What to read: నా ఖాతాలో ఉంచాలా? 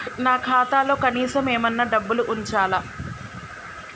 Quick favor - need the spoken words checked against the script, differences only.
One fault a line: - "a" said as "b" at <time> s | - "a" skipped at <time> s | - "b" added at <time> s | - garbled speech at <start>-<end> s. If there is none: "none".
- "కనీసం ఏమన్నా డబ్బులు" added at 0.9 s